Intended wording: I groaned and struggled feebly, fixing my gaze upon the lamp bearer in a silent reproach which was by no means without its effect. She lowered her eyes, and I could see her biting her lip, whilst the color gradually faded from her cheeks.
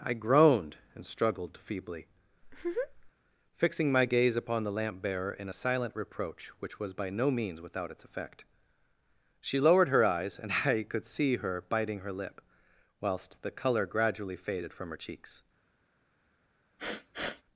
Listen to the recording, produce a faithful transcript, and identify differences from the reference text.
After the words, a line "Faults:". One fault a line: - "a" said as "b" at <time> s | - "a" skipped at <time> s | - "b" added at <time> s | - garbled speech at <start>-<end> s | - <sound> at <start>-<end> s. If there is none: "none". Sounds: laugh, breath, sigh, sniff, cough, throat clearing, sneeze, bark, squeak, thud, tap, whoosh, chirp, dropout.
I groaned and struggled feebly, fixing my gaze upon the lamp bearer in a silent reproach which was by no means without its effect. She lowered her eyes, and I could see her biting her lip, whilst the color gradually faded from her cheeks.
Faults:
- laugh at 2.4-3.1 s
- sniff at 16.8-17.4 s